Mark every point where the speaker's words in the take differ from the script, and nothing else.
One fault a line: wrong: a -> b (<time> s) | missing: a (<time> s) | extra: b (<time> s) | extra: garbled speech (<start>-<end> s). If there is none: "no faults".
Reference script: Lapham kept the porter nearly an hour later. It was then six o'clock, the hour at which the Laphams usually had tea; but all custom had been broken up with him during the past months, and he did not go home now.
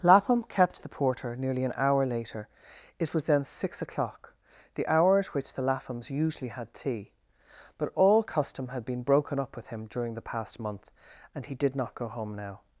wrong: months -> month (10.6 s)